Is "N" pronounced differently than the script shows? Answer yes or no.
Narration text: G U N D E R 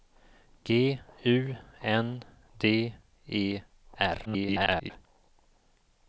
no